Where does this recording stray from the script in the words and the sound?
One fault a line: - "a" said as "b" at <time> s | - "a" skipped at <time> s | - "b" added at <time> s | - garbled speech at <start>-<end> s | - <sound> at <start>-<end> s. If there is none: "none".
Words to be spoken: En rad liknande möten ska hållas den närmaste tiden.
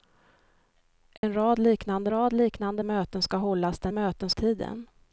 - dropout at 1.2-1.2 s
- "rad liknande" added at 2.1 s
- "närmaste" said as "möten" at 3.9 s